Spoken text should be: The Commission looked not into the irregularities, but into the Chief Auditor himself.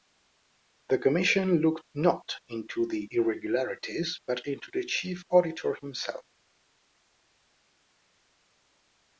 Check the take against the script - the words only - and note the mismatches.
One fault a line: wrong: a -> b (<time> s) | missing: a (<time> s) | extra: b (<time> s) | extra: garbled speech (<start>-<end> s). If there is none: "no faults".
no faults